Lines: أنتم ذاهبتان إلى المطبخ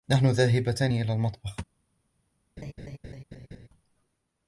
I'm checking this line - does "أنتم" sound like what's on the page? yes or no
no